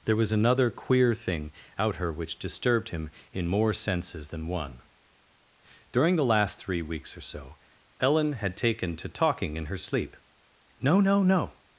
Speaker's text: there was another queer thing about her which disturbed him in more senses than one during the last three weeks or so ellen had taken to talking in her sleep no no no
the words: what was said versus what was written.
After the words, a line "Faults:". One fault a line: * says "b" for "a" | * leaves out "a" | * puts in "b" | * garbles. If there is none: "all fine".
there was another queer thing out her which disturbed him in more senses than one during the last three weeks or so ellen had taken to talking in her sleep no no no
Faults:
* says "out" for "about"